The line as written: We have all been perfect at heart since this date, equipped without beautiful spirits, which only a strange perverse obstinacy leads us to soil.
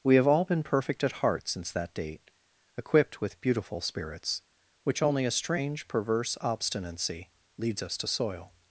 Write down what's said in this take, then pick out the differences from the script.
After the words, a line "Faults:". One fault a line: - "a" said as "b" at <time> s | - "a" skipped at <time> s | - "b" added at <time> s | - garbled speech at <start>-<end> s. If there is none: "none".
We have all been perfect at heart since that date, equipped with beautiful spirits, which only a strange perverse obstinacy leads us to soil.
Faults:
- "this" said as "that" at 1.7 s
- "without" said as "with" at 3.2 s